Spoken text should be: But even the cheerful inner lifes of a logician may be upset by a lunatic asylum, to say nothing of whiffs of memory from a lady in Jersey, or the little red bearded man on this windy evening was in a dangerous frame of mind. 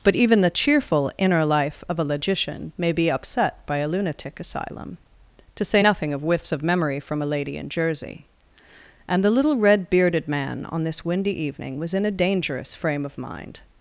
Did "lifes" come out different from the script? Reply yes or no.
yes